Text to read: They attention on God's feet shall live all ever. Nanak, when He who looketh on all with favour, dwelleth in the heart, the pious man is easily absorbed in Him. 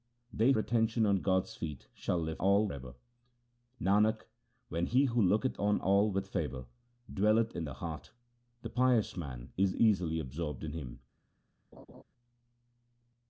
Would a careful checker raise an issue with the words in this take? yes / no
no